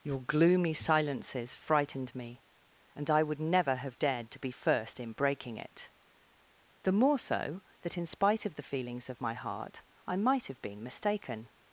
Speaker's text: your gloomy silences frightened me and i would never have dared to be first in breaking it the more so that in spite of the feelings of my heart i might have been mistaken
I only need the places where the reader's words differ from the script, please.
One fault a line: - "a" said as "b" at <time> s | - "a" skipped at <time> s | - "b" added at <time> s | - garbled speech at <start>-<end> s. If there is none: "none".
none